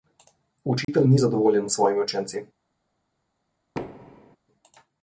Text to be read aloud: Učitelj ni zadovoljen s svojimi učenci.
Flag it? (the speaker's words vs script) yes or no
no